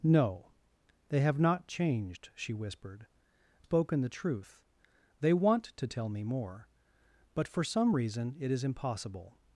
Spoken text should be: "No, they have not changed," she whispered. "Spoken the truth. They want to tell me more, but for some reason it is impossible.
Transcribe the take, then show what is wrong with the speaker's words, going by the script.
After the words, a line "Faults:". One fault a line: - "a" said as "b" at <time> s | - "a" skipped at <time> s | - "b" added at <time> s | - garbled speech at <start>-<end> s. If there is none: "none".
"No, they have not changed," she whispered. "Spoken the truth. They want to tell me more, but for some reason it is impossible.
Faults:
none